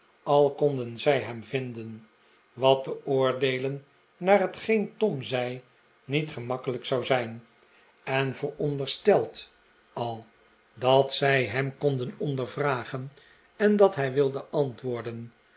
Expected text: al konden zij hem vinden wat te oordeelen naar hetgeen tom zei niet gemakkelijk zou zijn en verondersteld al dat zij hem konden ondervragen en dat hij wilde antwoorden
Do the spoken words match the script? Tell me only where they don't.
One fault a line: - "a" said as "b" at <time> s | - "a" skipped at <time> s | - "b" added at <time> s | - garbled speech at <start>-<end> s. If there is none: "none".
none